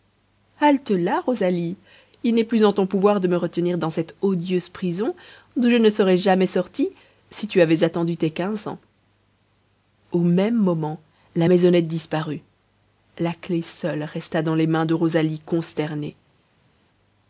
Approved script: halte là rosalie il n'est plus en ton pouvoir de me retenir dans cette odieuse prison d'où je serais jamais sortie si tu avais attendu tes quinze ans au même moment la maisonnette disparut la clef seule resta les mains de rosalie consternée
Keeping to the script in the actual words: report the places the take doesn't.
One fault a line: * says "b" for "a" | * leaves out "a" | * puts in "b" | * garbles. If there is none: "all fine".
* puts in "ne"
* puts in "dans"